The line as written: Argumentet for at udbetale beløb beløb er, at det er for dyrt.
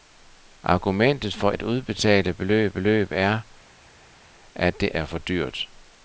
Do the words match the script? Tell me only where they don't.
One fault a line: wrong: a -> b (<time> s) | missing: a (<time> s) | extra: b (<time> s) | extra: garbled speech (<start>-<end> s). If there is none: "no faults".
no faults